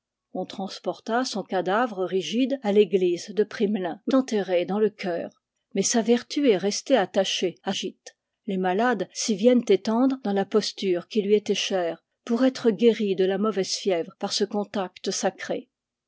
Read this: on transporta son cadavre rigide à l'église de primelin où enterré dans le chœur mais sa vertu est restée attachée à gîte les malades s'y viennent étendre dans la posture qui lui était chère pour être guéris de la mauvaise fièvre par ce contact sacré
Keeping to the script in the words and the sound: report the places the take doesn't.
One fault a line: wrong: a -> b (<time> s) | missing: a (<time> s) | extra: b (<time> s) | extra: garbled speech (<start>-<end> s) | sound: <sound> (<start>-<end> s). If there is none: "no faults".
no faults